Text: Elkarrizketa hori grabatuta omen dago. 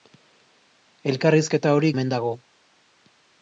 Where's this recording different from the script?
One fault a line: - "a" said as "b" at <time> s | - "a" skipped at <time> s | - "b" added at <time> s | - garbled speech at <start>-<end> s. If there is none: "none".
- "grabatuta" skipped at 1.9 s